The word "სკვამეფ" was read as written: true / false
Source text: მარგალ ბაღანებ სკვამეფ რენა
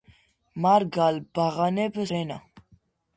false